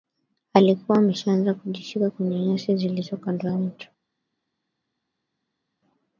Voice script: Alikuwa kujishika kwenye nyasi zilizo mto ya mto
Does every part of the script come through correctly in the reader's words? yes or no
no